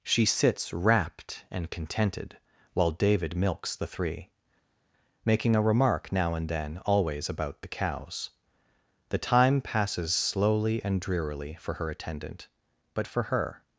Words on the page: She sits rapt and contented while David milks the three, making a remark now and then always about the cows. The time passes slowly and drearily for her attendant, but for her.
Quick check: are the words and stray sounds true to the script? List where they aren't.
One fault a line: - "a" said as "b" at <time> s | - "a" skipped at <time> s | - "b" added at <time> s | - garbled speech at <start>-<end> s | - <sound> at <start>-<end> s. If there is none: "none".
none